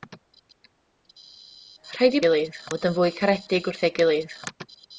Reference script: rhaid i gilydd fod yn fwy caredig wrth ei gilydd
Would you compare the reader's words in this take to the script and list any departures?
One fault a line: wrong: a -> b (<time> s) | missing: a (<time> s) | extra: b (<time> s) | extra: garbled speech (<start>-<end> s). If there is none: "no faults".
no faults